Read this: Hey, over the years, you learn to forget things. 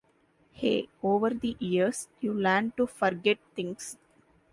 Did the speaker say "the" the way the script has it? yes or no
yes